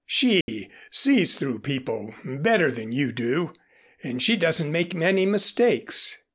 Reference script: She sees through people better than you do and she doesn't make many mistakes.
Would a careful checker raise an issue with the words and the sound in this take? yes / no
yes